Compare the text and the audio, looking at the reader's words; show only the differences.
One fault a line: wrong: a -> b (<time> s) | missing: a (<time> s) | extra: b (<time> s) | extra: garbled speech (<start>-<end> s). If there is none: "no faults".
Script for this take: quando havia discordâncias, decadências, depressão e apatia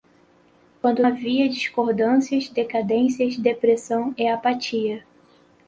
no faults